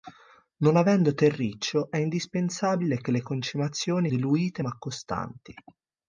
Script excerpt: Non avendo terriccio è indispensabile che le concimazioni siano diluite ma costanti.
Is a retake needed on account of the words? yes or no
yes